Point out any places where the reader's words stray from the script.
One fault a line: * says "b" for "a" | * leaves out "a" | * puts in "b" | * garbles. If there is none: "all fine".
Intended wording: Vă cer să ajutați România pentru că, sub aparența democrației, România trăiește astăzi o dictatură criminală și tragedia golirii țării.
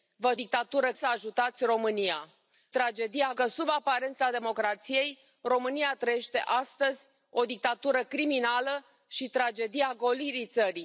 * says "dictatură" for "cer"
* says "tragedia" for "pentru"